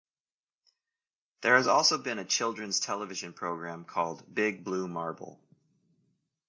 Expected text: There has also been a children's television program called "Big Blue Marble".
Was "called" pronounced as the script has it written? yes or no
yes